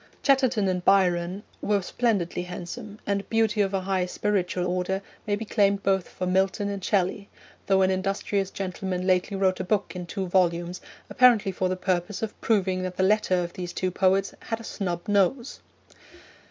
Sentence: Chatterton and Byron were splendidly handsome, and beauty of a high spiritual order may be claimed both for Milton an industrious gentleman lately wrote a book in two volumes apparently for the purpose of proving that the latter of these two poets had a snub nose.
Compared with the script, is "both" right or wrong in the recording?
right